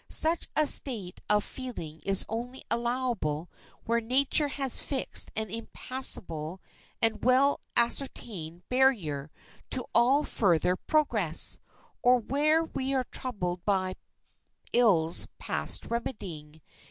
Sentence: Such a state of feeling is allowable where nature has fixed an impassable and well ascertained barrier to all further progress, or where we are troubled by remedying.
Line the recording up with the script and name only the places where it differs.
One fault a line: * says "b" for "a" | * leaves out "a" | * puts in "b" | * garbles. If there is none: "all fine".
* puts in "only"
* puts in "ills past"